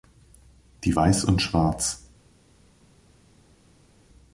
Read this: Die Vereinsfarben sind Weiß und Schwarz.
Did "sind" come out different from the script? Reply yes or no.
yes